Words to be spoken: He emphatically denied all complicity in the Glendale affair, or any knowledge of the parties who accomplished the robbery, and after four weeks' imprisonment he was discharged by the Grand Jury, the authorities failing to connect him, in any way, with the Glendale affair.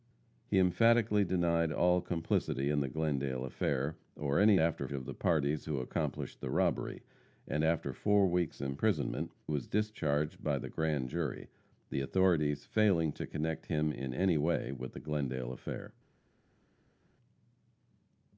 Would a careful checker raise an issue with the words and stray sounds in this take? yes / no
yes